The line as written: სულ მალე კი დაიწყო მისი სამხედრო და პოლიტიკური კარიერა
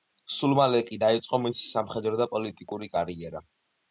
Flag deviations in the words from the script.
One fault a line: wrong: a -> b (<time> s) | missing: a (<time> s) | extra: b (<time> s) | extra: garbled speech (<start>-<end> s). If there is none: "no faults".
no faults